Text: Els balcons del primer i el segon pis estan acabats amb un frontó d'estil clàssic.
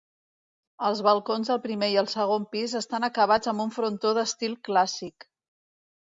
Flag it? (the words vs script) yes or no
no